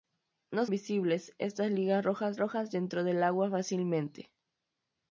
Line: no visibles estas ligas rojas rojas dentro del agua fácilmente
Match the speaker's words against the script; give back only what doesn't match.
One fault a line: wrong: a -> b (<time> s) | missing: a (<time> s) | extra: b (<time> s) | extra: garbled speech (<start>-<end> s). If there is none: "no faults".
no faults